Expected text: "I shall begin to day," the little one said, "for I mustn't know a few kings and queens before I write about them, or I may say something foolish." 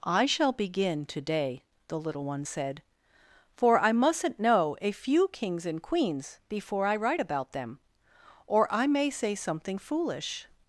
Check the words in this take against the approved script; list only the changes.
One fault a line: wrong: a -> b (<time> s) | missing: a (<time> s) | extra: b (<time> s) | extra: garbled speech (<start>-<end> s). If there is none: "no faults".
no faults